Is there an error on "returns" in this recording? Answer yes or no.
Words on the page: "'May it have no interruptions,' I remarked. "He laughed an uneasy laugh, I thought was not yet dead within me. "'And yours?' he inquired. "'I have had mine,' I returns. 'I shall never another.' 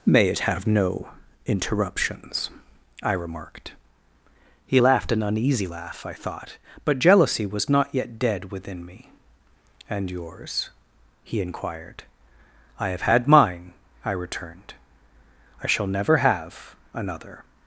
yes